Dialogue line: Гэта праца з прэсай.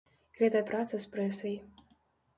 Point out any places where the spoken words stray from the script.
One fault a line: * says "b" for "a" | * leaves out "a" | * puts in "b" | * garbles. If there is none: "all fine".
all fine